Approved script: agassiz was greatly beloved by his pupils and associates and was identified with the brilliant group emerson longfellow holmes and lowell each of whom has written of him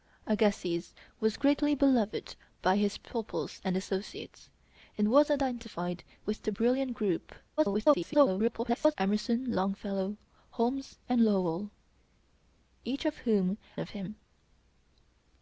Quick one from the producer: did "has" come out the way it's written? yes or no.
no